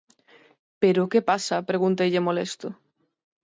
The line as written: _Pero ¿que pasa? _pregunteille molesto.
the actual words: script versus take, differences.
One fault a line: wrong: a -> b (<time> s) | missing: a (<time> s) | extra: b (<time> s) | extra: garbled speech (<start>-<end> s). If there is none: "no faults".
no faults